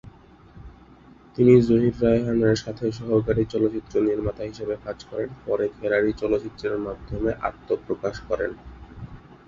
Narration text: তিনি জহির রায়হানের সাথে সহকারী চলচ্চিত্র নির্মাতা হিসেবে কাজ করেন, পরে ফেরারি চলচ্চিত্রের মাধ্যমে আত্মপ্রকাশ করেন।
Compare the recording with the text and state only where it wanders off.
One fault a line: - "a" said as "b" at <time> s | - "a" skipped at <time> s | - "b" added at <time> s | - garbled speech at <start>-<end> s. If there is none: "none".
none